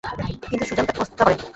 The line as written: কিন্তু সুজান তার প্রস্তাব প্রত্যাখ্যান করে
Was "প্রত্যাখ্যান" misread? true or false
true